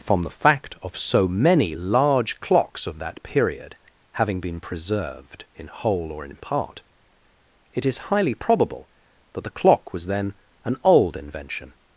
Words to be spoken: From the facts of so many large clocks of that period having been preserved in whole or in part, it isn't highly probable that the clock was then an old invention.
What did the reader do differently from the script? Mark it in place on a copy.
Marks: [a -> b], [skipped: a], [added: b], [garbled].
From the [facts -> fact] of so many large clocks of that period having been preserved in whole or in part, it [isn't -> is] highly probable that the clock was then an old invention.